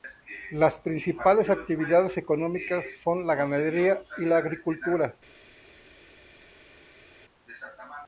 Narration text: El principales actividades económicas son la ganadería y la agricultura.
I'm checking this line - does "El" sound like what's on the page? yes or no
no